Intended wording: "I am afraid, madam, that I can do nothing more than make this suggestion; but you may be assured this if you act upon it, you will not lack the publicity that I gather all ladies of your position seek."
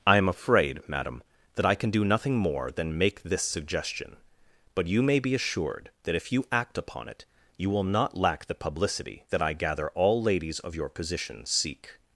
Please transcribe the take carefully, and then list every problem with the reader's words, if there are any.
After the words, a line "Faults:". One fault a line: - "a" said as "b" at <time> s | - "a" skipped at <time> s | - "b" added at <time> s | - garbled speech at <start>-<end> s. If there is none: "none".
"I am afraid, madam, that I can do nothing more than make this suggestion; but you may be assured that if you act upon it, you will not lack the publicity that I gather all ladies of your position seek."
Faults:
- "this" said as "that" at 6.0 s